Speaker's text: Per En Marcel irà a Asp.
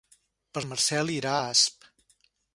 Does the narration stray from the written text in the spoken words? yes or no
no